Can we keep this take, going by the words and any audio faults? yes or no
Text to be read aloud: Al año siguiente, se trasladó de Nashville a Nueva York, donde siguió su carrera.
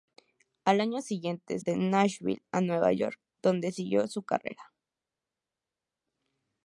no